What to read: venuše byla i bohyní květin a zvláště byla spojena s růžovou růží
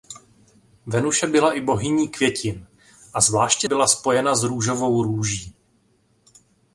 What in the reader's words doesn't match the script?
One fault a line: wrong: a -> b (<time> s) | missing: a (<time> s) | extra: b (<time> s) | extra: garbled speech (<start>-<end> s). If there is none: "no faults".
no faults